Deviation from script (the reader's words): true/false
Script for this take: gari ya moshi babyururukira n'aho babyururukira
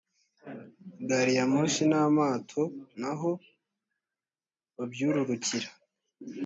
true